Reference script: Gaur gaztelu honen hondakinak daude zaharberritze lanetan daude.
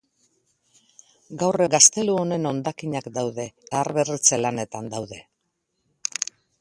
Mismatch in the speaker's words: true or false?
false